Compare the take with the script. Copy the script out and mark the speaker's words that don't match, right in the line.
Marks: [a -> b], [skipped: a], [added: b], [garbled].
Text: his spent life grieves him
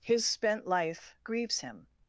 his spent life grieves him